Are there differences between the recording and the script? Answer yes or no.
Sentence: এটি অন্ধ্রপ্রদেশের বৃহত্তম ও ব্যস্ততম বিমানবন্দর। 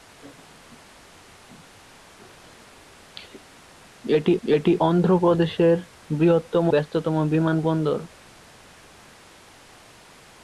yes